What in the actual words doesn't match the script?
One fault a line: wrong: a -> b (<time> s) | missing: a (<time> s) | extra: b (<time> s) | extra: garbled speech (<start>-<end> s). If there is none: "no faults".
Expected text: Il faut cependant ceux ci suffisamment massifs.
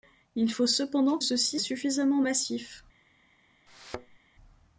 no faults